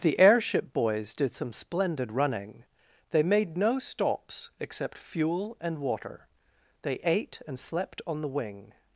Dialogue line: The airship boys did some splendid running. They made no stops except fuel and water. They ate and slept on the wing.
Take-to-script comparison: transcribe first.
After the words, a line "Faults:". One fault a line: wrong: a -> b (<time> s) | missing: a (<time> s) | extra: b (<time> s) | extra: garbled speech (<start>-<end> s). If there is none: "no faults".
The airship boys did some splendid running. They made no stops except fuel and water. They ate and slept on the wing.
Faults:
no faults